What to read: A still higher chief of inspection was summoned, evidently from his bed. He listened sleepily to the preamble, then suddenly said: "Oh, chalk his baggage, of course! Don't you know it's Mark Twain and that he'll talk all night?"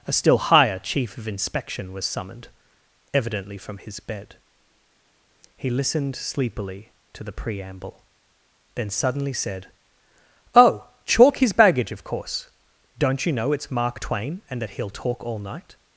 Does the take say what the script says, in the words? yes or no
yes